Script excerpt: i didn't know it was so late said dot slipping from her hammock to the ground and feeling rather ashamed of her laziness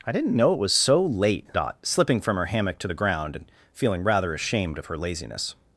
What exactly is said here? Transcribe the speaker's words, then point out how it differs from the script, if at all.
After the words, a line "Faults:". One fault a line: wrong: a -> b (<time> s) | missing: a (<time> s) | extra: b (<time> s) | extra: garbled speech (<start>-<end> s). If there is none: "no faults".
i didn't know it was so late dot slipping from her hammock to the ground and feeling rather ashamed of her laziness
Faults:
missing: said (1.5 s)